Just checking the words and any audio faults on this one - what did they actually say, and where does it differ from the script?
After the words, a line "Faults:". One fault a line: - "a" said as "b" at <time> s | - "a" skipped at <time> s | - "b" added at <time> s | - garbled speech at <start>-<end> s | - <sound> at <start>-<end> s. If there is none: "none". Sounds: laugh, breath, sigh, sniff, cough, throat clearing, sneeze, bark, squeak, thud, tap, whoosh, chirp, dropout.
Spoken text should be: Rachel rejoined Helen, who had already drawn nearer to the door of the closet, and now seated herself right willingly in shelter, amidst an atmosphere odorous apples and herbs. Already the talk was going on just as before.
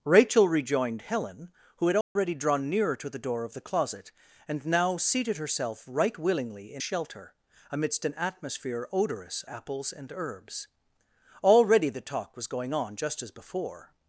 Rachel rejoined Helen, who had already drawn nearer to the door of the closet, and now seated herself right willingly in shelter, amidst an atmosphere odorous apples and herbs. Already the talk was going on just as before.
Faults:
- dropout at 2.0-2.2 s